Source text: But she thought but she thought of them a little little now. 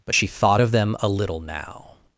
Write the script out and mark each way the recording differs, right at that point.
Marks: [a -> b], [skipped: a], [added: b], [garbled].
But she thought [skipped: but she thought] of them a little [skipped: little] now.